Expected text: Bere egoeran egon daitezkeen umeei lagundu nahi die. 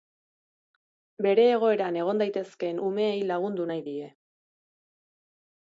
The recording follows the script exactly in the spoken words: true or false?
true